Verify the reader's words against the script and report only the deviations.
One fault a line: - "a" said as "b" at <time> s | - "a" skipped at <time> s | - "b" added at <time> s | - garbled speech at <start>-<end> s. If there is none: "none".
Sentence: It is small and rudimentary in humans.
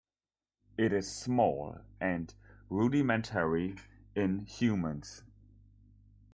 none